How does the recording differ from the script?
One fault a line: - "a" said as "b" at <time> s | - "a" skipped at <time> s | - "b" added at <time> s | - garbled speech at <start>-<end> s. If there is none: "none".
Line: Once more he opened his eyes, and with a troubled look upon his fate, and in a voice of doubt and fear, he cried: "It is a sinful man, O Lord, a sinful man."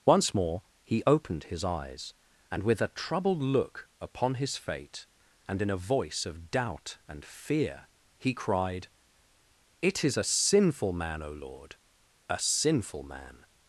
none